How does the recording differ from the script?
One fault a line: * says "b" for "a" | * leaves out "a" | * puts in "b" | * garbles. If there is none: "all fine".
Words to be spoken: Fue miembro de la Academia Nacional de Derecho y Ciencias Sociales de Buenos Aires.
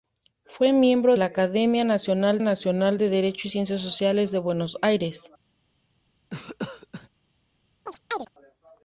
* leaves out "de"
* puts in "Nacional"